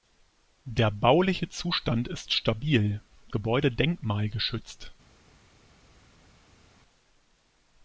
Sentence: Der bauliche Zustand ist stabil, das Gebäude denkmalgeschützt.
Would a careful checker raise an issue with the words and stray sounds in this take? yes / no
yes